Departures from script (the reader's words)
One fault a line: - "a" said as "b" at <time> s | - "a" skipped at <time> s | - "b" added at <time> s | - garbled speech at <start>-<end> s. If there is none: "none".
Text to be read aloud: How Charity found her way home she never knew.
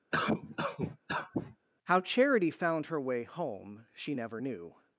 none